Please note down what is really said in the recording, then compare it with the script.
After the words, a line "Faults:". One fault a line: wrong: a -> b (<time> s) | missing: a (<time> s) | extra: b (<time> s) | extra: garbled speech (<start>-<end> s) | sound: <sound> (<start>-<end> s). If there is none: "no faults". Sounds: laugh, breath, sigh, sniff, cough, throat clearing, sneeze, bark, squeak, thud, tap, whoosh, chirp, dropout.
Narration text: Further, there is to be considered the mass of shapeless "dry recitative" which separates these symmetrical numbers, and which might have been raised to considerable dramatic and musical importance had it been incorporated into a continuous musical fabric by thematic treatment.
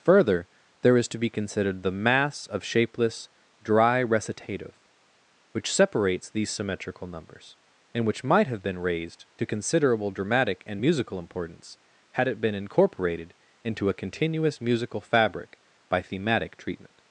Further, there is to be considered the mass of shapeless "dry recitative" which separates these symmetrical numbers, and which might have been raised to considerable dramatic and musical importance had it been incorporated into a continuous musical fabric by thematic treatment.
Faults:
no faults